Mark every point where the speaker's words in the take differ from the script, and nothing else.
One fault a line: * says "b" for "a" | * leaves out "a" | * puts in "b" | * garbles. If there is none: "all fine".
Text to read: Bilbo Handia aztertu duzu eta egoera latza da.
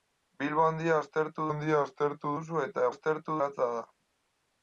* puts in "Handia aztertu"
* says "aztertu" for "egoera"